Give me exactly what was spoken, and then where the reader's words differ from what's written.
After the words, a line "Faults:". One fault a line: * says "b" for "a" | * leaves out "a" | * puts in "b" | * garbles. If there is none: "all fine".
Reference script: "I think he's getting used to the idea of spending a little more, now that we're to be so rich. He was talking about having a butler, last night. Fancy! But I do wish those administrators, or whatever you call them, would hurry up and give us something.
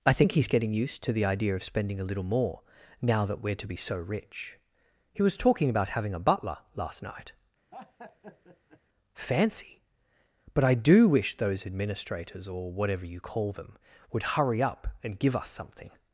"I think he's getting used to the idea of spending a little more, now that we're to be so rich. He was talking about having a butler, last night. Fancy! But I do wish those administrators, or whatever you call them, would hurry up and give us something.
Faults:
all fine